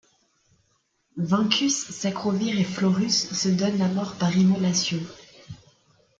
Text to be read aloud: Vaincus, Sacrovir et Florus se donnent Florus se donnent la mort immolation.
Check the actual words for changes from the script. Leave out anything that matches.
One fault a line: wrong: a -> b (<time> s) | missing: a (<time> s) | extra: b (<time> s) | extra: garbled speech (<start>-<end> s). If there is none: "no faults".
missing: Florus se donnent (3.8 s)
extra: par (4.2 s)